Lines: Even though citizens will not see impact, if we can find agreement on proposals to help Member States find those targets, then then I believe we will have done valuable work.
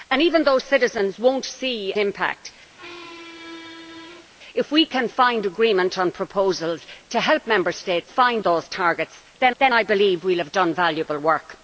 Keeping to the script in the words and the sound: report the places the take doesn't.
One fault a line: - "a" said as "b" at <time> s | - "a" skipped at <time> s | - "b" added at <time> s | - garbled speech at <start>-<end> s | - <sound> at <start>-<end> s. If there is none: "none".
- squeak at 2.8-4.3 s